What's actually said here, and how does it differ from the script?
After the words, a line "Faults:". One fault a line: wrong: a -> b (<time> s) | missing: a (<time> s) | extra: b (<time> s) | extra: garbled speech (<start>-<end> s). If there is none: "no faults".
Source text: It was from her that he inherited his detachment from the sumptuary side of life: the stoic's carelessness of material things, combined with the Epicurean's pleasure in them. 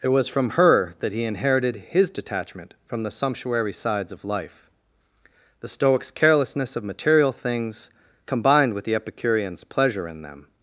It was from her that he inherited his detachment from the sumptuary sides of life: the stoic's carelessness of material things, combined with the Epicurean's pleasure in them.
Faults:
wrong: side -> sides (3.7 s)